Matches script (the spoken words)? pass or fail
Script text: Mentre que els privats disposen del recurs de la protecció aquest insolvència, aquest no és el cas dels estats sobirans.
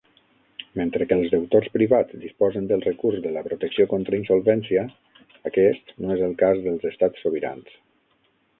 fail